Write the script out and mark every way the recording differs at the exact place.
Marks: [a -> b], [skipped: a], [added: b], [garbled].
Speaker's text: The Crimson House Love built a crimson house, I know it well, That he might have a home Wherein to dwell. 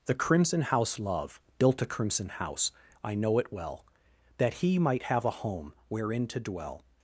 The Crimson House Love built a crimson house, I know it well, That he might have a home Wherein to dwell.